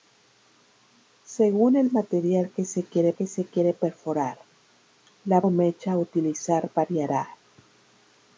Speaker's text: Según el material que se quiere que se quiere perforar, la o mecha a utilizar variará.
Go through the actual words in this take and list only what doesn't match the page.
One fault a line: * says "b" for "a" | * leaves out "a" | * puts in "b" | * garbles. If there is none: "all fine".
all fine